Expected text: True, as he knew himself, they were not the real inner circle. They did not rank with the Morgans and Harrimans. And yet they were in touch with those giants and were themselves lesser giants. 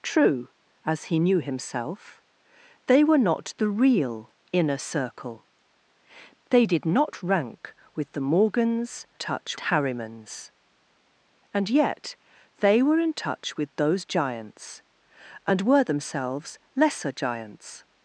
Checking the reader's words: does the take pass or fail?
fail